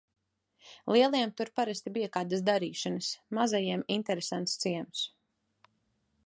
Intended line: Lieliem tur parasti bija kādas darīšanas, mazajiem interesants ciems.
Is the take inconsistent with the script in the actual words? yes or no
no